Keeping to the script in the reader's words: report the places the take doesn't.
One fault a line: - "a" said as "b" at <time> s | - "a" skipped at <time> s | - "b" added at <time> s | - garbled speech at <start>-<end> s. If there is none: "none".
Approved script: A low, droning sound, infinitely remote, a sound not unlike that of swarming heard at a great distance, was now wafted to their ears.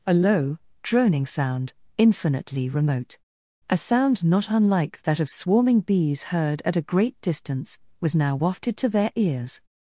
- "bees" added at 5.8 s